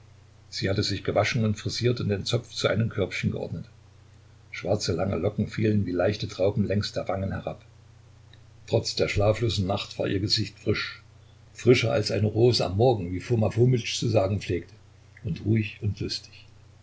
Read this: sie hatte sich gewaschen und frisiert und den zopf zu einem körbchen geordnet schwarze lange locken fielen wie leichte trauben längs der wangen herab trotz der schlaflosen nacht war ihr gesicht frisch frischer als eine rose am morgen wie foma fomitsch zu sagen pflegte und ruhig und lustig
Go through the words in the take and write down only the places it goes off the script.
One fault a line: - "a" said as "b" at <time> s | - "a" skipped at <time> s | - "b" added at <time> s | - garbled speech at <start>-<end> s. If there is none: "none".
none